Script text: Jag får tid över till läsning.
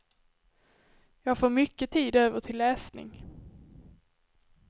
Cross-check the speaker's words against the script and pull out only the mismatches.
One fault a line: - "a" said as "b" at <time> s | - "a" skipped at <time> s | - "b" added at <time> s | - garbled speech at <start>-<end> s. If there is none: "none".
- "mycket" added at 1.5 s